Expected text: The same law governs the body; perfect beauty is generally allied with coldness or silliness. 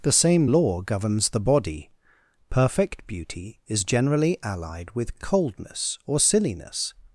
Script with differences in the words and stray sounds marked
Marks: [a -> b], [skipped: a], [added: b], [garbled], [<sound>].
The same law governs the body; perfect beauty is generally allied with coldness or silliness.